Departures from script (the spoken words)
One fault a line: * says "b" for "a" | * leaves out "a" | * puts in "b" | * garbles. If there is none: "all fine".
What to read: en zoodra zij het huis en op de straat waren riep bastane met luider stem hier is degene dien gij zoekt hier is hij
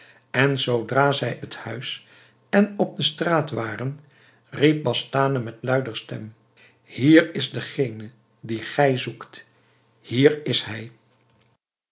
all fine